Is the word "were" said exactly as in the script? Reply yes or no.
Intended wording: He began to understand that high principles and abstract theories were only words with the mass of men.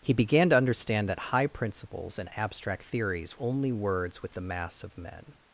no